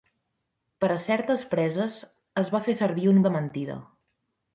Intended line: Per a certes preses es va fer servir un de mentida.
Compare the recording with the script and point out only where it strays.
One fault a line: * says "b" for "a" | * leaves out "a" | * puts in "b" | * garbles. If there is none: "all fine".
all fine